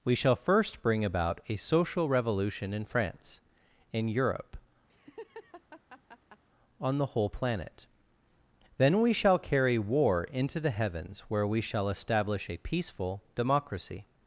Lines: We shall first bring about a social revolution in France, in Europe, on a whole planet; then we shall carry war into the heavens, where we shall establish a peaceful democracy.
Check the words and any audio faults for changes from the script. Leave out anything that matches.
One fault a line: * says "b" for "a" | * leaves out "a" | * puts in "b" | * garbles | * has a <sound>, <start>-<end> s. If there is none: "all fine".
* has a laugh, 4.9-6.4 s
* says "the" for "a"